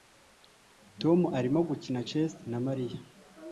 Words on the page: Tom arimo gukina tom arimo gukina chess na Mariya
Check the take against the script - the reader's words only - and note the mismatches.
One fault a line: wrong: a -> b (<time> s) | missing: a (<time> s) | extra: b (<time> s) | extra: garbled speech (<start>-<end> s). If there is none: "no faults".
missing: tom arimo gukina (2.0 s)